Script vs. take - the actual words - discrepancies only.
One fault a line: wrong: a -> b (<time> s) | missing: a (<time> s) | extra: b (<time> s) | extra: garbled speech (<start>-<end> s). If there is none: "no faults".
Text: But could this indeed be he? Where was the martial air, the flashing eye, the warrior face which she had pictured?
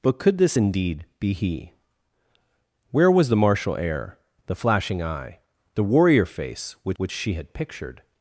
extra: which (7.0 s)